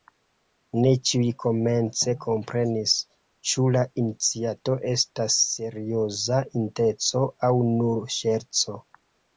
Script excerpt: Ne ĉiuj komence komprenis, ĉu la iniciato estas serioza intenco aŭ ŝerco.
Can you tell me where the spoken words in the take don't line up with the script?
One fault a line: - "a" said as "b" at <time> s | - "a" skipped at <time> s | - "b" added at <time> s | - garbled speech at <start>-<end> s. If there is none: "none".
- "nur" added at 7.8 s